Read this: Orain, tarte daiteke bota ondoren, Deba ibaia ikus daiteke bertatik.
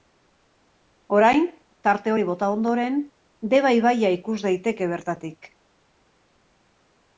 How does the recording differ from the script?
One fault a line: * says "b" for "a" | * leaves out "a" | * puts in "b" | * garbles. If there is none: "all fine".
* says "hori" for "daiteke"